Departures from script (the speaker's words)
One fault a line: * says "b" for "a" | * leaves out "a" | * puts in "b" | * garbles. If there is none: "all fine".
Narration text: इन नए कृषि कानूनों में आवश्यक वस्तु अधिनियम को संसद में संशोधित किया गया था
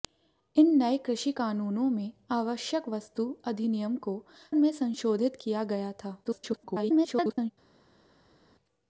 * leaves out "संसद"
* garbles